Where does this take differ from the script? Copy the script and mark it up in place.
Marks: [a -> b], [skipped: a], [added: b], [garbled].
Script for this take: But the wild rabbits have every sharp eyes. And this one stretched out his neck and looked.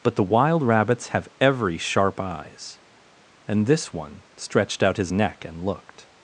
But the wild rabbits have every sharp eyes. And this one stretched out his neck and looked.